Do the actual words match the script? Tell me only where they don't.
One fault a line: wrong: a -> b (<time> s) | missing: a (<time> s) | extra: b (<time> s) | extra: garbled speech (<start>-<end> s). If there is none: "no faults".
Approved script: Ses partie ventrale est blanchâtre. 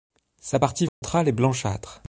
wrong: Ses -> Sa (0.4 s)